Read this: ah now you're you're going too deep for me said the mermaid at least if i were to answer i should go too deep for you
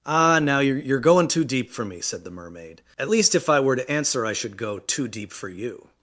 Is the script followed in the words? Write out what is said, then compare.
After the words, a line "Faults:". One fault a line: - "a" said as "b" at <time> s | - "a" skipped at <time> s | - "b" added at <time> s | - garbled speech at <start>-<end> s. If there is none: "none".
ah now you're you're going too deep for me said the mermaid at least if i were to answer i should go too deep for you
Faults:
none